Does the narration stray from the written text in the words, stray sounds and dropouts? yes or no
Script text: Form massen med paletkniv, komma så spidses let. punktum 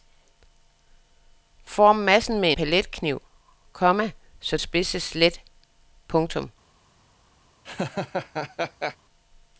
yes